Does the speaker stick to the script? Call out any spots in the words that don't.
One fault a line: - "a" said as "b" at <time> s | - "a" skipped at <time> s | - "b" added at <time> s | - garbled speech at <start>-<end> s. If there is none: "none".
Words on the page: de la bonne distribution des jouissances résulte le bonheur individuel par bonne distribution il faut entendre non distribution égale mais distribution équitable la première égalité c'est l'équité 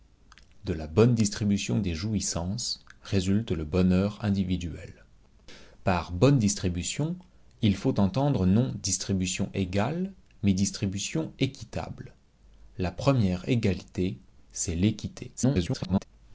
- garbled speech at 15.4-16.1 s